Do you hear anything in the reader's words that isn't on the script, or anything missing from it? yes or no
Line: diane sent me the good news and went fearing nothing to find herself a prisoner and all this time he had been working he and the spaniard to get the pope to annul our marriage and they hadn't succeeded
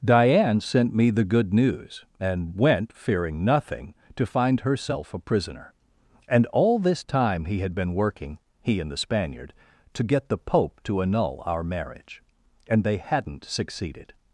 no